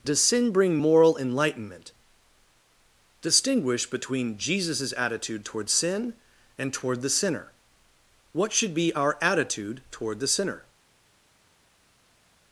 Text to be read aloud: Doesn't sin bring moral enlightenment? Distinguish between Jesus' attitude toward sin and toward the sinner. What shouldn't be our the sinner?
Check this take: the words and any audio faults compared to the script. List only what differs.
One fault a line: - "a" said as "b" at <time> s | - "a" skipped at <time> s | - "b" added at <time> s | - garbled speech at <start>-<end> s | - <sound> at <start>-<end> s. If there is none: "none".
- "Doesn't" said as "Does" at 0.0 s
- "shouldn't" said as "should" at 8.5 s
- "attitude toward" added at 9.2 s